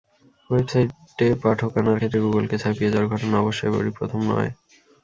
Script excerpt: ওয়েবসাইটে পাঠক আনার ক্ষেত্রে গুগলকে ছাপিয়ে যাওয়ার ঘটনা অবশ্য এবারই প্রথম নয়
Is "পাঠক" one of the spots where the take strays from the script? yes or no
no